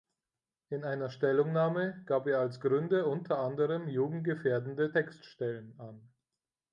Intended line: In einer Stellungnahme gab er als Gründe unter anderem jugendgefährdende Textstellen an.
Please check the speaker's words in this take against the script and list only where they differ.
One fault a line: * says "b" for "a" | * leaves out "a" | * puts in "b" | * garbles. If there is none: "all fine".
all fine